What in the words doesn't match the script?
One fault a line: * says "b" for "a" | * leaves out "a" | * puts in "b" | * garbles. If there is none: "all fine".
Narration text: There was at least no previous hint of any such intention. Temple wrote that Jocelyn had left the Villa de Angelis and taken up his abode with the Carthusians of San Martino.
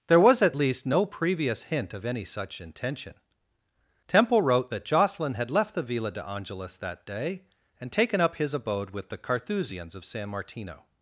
* puts in "that day"